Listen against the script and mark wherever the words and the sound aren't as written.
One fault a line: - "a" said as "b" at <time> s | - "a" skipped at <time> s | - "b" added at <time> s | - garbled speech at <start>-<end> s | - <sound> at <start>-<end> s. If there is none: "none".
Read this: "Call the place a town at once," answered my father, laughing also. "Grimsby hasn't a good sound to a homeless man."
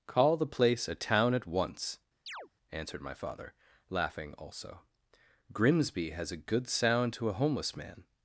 - chirp at 2.3-2.5 s
- "hasn't" said as "has" at 6.1 s